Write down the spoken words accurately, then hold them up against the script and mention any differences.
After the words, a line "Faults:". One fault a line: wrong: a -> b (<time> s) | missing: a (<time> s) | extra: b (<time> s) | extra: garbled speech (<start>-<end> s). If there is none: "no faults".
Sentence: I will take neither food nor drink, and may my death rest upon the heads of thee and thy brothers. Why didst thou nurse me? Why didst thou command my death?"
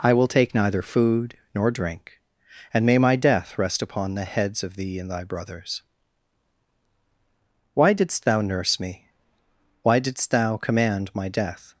I will take neither food nor drink, and may my death rest upon the heads of thee and thy brothers. Why didst thou nurse me? Why didst thou command my death?"
Faults:
no faults